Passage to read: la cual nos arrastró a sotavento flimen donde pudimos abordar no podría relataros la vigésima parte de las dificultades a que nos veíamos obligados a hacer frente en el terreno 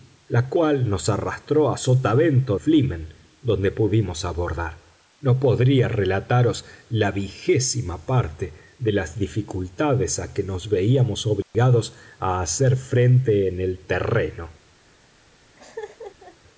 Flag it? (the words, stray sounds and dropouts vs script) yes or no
yes